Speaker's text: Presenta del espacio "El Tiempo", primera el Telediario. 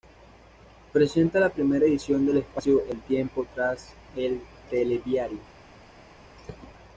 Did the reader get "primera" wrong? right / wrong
wrong